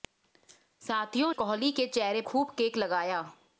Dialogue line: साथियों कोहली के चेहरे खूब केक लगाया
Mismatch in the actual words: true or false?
false